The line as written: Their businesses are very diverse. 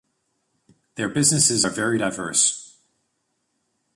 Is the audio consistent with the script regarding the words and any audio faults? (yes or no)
yes